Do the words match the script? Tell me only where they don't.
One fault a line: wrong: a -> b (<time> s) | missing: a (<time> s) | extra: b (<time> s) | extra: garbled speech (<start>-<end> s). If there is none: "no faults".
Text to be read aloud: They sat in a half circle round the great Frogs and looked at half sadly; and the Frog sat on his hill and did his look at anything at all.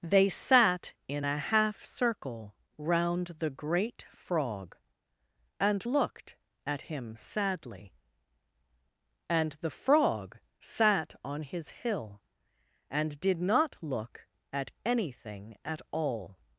wrong: Frogs -> Frog (4.1 s)
wrong: half -> him (6.8 s)
wrong: his -> not (13.4 s)